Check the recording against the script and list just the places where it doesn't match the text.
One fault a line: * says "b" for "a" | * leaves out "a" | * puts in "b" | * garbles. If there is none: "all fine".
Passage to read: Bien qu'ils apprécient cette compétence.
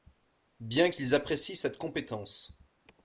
all fine